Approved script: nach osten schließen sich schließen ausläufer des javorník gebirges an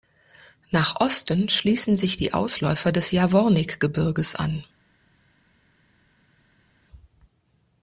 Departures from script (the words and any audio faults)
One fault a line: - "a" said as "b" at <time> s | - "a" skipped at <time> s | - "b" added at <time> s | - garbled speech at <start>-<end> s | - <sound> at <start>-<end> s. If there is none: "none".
- "schließen" said as "die" at 2.2 s